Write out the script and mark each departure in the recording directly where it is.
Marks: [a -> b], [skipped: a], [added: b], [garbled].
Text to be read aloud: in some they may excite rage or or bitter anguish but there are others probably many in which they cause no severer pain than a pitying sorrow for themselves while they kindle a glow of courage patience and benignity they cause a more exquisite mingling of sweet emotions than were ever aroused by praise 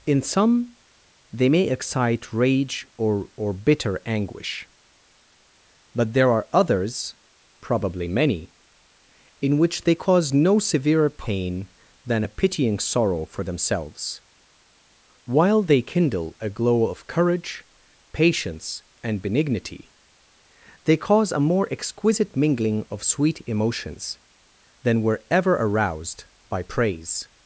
in some they may excite rage or or bitter anguish but there are others probably many in which they cause no severer pain than a pitying sorrow for themselves while they kindle a glow of courage patience and benignity they cause a more exquisite mingling of sweet emotions than were ever aroused by praise